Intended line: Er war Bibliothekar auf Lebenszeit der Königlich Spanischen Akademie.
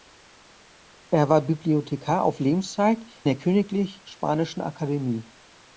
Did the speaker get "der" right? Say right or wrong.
right